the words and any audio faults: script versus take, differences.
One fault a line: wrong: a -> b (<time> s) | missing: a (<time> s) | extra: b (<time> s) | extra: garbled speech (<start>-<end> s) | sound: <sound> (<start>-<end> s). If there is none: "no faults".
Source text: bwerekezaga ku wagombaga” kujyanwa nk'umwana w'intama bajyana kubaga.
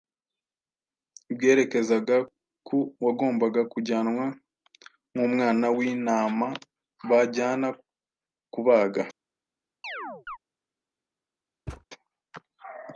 sound: chirp (9.8-10.4 s)
sound: thud (11.7-11.8 s)